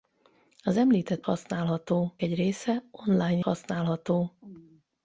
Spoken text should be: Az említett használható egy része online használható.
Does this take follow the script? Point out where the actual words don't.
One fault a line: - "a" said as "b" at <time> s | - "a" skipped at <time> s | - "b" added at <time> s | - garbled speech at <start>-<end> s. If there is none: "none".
none